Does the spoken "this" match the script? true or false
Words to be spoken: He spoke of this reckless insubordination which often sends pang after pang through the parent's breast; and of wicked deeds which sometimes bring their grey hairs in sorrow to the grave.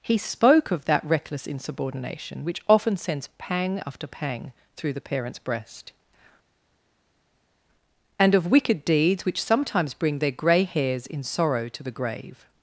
false